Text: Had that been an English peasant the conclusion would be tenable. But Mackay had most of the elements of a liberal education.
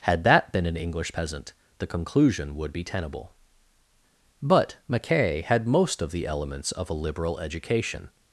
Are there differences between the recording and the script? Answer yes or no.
no